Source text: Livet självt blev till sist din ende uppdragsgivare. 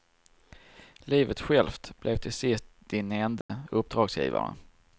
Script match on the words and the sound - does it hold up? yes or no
no